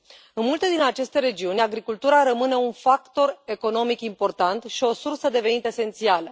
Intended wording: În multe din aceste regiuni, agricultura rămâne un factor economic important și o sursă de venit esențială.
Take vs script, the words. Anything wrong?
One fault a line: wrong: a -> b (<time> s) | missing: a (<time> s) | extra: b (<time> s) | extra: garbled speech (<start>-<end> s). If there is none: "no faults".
no faults